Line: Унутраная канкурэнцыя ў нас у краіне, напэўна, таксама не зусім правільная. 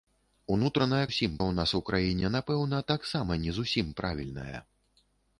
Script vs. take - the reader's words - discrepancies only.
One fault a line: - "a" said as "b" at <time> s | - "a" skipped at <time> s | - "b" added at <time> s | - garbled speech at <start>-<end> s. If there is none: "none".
- "канкурэнцыя" said as "зусім" at 1.1 s